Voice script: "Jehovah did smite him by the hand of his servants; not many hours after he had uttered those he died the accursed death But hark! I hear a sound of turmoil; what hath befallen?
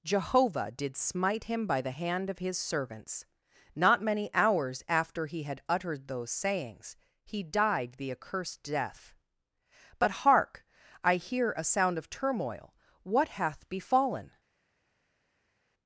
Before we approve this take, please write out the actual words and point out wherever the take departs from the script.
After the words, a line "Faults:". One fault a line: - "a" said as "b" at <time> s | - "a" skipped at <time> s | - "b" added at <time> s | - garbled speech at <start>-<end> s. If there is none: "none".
"Jehovah did smite him by the hand of his servants; not many hours after he had uttered those sayings he died the accursed death But hark! I hear a sound of turmoil; what hath befallen?
Faults:
- "sayings" added at 6.3 s